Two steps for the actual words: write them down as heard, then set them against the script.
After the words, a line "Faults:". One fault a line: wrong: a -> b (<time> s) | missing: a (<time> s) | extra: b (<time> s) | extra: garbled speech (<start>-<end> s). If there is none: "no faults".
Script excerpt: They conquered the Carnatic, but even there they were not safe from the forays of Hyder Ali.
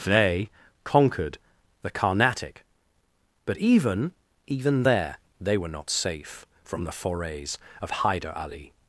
They conquered the Carnatic, but even even there they were not safe from the forays of Hyder Ali.
Faults:
extra: even (4.5 s)